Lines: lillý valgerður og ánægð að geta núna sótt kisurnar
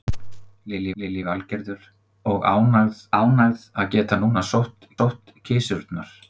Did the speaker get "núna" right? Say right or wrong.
right